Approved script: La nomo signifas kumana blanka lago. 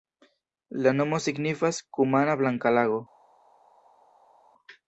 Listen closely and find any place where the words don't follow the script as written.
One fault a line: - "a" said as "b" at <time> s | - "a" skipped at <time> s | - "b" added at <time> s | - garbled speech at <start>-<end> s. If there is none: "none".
none